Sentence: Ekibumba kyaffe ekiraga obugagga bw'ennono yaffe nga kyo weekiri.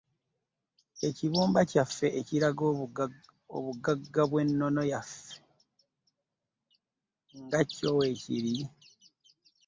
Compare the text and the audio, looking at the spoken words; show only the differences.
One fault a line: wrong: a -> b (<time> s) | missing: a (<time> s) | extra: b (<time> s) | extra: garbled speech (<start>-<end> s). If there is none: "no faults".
no faults